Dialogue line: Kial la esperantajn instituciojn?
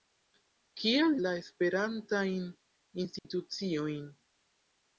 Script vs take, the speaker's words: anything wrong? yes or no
no